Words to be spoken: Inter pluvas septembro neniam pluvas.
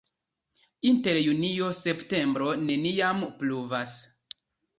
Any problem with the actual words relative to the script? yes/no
yes